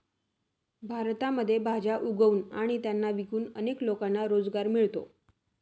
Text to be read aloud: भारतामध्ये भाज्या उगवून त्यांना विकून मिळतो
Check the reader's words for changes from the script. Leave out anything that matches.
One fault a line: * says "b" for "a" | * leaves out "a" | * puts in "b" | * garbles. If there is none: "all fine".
* puts in "आणि"
* puts in "अनेक लोकांना रोजगार"